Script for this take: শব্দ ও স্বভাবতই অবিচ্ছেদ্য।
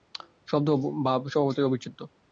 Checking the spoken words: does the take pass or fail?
fail